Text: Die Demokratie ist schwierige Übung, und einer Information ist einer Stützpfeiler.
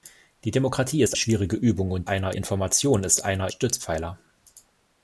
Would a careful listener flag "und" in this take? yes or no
no